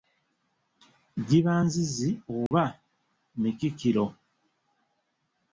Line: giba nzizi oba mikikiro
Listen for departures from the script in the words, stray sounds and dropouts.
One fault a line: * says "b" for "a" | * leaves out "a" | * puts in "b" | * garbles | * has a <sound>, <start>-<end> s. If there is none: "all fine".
* has a dropout, 2.5-2.5 s